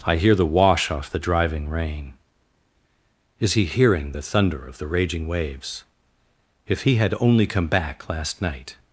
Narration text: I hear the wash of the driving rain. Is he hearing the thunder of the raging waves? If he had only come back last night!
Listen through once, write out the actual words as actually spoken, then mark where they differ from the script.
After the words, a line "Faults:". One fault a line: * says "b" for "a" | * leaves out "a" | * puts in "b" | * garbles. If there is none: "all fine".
I hear the wash off the driving rain. Is he hearing the thunder of the raging waves? If he had only come back last night!
Faults:
* says "off" for "of"